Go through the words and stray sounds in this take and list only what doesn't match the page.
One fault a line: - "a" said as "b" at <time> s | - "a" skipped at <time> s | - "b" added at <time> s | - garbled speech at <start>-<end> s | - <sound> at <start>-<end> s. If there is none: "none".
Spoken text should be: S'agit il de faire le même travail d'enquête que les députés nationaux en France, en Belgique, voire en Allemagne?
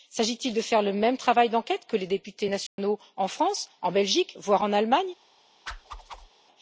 - dropout at 2.7-2.8 s
- whoosh at 5.7-6.3 s